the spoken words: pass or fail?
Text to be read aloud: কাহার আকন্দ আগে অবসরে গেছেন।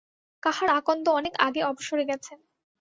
fail